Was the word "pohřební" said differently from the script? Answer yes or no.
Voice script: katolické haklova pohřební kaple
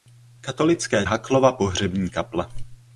no